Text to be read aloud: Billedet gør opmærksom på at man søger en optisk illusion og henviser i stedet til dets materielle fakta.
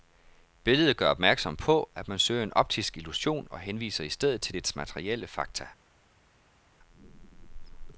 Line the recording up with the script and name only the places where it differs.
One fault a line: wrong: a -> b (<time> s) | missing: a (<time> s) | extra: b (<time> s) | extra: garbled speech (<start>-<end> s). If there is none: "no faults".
no faults